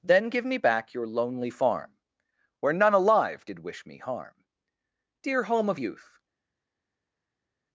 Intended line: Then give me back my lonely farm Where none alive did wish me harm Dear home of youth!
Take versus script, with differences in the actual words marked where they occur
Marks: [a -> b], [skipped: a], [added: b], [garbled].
Then give me back [my -> your] lonely farm Where none alive did wish me harm Dear home of youth!